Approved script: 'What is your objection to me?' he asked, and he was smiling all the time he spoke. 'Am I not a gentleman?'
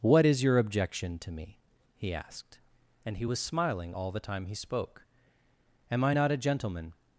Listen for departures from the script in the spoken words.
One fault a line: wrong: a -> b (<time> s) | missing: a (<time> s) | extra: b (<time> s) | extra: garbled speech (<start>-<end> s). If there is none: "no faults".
no faults